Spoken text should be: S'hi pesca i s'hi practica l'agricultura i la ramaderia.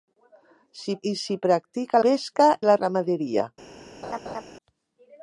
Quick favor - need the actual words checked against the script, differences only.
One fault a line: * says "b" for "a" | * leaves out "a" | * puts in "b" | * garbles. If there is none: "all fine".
* leaves out "pesca"
* says "pesca" for "l'agricultura"